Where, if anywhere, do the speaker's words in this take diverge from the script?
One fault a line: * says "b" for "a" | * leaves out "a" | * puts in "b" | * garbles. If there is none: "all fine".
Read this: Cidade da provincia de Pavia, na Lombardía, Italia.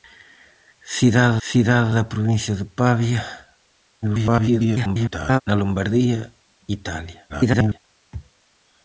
* puts in "cidade"
* garbles
* garbles